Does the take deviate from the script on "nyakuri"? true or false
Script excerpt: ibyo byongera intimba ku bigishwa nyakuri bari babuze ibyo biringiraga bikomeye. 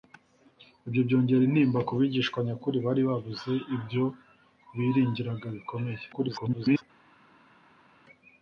false